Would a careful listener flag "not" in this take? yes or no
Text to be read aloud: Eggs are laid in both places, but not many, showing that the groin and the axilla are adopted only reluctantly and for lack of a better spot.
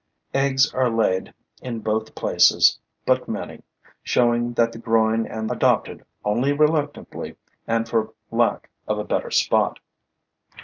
yes